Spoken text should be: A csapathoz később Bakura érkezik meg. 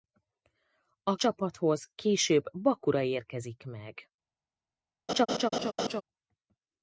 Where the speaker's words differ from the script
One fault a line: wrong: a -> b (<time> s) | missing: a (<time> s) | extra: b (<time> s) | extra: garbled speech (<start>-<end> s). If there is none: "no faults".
no faults